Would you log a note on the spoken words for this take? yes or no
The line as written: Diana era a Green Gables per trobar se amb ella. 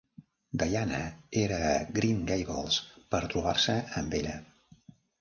no